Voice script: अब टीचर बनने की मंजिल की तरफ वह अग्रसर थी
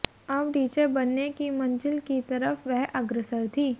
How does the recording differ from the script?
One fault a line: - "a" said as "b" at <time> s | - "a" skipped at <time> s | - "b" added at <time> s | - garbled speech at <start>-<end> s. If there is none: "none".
none